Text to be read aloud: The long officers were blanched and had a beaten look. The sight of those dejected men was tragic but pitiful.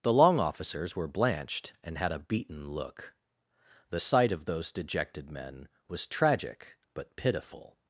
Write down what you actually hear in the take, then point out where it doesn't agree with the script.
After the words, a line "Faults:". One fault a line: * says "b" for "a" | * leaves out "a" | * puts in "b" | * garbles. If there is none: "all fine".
The long officers were blanched and had a beaten look. The sight of those dejected men was tragic but pitiful.
Faults:
all fine